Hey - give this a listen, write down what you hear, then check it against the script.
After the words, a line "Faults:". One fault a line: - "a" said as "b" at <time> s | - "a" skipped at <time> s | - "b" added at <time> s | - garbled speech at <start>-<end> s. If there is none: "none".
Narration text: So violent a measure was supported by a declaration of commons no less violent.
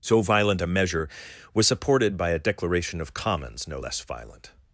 So violent a measure was supported by a declaration of commons no less violent.
Faults:
none